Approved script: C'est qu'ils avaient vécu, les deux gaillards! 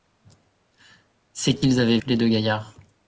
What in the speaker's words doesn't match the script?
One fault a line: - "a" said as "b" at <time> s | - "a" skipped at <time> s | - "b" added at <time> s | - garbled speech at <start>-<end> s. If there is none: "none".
- "vécu" skipped at 2.0 s